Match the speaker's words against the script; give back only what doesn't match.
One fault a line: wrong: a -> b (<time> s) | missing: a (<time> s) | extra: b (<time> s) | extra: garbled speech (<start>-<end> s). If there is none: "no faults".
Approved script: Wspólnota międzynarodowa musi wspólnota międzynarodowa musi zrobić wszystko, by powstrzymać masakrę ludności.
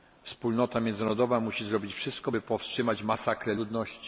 missing: wspólnota międzynarodowa musi (1.6 s)